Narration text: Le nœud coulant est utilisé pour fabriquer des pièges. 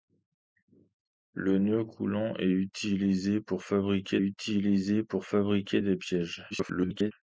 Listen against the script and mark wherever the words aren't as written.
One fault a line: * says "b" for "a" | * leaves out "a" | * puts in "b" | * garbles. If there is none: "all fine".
* puts in "utilisé pour fabriquer"
* garbles